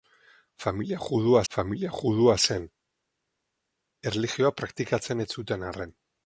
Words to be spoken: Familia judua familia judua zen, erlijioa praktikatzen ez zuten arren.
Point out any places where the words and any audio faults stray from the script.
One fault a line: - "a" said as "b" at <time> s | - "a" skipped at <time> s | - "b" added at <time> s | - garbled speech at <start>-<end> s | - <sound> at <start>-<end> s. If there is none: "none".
none